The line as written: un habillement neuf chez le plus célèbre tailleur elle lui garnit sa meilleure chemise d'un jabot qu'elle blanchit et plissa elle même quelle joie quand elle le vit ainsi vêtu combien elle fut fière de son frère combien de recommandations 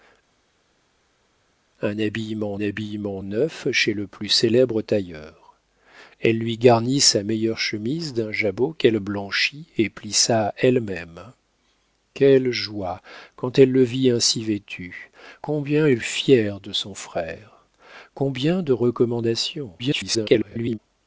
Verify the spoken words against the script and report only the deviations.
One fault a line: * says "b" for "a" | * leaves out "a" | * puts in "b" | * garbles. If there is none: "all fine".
* puts in "habillement"
* leaves out "fut"
* garbles